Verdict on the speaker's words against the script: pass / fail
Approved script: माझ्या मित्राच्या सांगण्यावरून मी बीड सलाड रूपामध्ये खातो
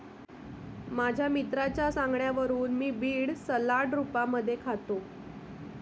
pass